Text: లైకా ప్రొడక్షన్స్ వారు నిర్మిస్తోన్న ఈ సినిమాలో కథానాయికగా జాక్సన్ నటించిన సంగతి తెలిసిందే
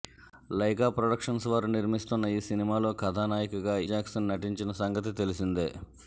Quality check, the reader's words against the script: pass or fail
pass